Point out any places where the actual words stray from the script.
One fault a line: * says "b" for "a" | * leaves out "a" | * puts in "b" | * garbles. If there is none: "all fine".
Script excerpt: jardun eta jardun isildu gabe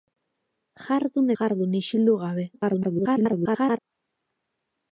* leaves out "eta"
* garbles